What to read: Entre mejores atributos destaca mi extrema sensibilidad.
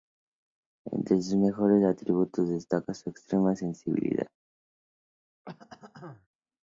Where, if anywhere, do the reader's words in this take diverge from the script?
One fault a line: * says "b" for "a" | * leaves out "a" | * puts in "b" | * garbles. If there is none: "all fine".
* puts in "sus"
* says "su" for "mi"